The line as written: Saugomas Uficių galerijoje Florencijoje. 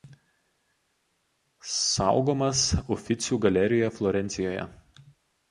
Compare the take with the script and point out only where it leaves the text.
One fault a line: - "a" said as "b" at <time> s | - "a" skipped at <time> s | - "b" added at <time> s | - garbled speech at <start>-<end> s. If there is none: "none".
none